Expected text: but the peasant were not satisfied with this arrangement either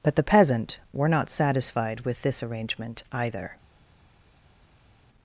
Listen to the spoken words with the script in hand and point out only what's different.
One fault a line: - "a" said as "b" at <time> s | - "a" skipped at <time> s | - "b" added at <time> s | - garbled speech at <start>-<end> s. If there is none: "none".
none